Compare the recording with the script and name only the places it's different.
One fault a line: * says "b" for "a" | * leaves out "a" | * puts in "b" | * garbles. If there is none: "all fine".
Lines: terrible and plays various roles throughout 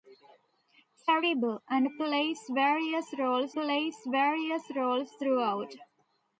* puts in "plays various roles"